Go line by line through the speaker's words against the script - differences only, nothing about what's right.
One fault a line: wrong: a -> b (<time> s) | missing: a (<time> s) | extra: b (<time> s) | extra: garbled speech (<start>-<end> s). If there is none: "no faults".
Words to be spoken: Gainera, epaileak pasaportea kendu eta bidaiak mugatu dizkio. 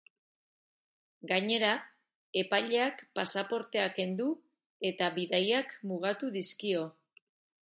no faults